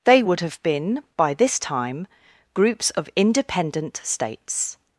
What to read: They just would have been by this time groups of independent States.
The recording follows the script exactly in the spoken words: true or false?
false